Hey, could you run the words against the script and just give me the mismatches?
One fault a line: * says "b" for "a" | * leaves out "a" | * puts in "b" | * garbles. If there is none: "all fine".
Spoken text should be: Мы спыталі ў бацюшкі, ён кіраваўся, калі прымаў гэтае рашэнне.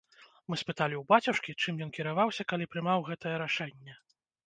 * puts in "чым"